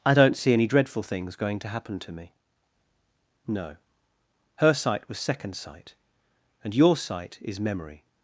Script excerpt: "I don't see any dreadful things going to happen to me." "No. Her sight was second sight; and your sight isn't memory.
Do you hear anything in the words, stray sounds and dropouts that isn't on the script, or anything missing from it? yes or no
yes